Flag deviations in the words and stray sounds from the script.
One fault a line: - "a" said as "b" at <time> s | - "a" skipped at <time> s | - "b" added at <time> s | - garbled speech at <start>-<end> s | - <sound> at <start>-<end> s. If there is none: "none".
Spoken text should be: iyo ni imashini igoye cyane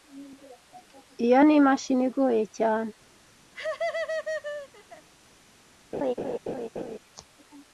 - laugh at 3.5-5.1 s
- laugh at 5.9-7.0 s